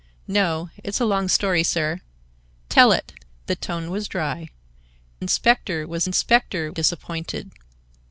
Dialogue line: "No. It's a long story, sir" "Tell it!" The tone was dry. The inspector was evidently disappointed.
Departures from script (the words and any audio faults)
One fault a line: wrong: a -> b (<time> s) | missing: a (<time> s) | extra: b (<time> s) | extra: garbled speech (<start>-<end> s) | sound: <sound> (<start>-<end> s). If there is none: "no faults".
missing: The (4.5 s)
wrong: evidently -> inspector (6.0 s)